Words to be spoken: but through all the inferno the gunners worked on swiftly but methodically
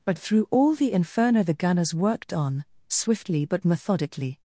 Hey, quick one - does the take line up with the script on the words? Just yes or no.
yes